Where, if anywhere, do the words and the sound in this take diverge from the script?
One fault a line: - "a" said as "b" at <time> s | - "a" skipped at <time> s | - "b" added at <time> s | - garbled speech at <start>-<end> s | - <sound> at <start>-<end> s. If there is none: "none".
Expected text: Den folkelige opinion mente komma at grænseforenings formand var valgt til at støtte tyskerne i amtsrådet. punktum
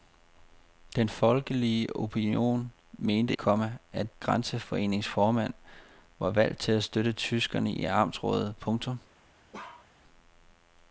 - bark at 9.5-9.9 s